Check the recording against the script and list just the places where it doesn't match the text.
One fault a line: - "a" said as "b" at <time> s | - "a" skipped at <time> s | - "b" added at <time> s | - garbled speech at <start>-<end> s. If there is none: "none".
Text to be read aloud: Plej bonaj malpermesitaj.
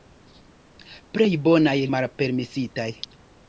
none